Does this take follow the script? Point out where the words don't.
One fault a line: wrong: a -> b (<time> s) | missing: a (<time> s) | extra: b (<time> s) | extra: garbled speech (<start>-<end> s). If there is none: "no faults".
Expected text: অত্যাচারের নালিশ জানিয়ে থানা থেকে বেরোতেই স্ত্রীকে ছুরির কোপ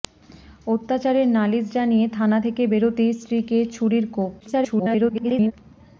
extra: garbled speech (4.4-5.5 s)